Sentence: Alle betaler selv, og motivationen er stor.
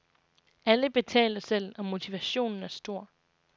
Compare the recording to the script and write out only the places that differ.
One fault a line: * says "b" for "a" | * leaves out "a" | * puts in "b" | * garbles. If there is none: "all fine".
all fine